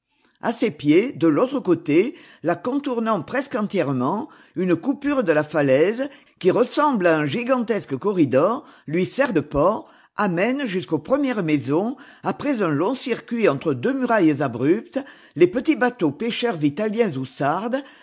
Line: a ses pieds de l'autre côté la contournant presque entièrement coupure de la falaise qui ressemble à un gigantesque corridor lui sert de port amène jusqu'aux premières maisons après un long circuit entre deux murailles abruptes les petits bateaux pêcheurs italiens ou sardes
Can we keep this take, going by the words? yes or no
no